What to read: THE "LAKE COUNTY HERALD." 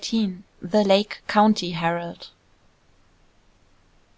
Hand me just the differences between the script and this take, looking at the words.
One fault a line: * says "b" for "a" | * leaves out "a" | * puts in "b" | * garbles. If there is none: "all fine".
all fine